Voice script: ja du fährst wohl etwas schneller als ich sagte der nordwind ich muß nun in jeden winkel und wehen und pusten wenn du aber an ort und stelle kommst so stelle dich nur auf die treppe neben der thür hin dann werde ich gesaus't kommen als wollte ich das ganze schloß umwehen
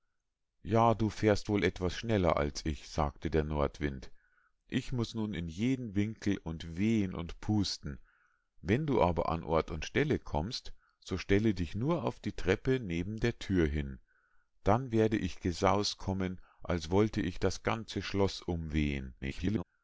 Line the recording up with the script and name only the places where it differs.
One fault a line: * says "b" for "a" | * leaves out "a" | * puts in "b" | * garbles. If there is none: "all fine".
* garbles